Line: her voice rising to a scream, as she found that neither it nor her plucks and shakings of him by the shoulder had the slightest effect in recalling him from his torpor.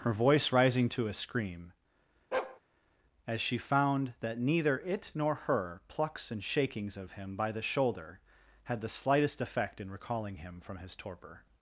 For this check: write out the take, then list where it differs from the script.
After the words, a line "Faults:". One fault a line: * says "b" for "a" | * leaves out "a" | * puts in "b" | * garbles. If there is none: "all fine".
her voice rising to a scream, as she found that neither it nor her plucks and shakings of him by the shoulder had the slightest effect in recalling him from his torpor.
Faults:
all fine